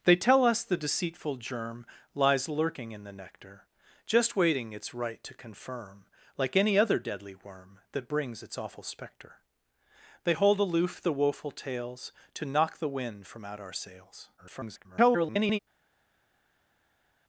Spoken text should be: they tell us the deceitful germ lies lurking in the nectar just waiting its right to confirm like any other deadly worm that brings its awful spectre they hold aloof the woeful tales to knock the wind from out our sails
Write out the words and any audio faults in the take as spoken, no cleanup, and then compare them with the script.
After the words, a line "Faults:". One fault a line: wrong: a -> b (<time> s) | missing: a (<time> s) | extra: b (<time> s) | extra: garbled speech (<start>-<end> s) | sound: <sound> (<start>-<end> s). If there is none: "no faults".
they tell us the deceitful germ lies lurking in the nectar just waiting its right to confirm like any other deadly worm that brings its awful spectre they hold aloof the woeful tales to knock the wind from out our sails [garbled]
Faults:
extra: garbled speech (14.4-15.6 s)